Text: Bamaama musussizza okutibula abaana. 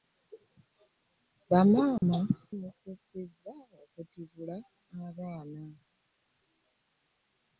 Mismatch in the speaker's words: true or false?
false